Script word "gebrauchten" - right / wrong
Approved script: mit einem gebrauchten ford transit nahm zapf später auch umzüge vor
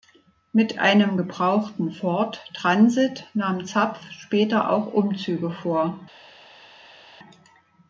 right